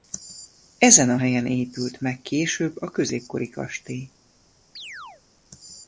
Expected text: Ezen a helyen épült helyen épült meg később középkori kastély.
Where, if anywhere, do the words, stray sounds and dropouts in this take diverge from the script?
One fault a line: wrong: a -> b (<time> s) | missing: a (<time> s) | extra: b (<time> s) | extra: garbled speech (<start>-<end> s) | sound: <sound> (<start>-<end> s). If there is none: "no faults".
missing: helyen épült (2.0 s)
extra: a (2.8 s)
sound: chirp (4.8-5.2 s)